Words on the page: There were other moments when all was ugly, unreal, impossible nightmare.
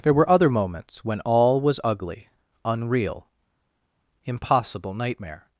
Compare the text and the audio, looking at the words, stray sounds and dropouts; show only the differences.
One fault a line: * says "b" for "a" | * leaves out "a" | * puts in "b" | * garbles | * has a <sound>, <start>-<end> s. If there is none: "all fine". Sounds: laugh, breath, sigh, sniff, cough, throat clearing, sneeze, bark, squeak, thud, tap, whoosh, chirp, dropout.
all fine